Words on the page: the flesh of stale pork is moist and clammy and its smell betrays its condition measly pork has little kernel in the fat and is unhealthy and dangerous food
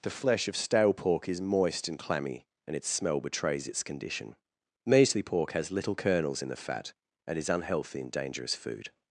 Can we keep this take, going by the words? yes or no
no